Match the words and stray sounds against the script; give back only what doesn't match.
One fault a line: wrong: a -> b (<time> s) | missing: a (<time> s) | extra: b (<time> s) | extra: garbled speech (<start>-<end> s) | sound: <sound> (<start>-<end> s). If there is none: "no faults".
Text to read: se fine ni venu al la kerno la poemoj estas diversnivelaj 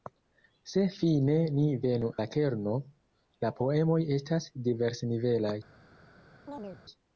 missing: al (2.1 s)
sound: chirp (6.5-6.8 s)